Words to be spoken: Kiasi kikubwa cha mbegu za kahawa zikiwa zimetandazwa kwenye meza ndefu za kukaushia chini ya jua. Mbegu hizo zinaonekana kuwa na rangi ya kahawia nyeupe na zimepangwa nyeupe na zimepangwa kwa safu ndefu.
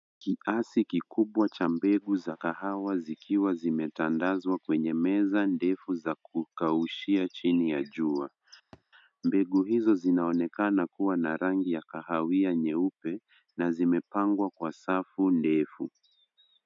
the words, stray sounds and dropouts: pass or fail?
fail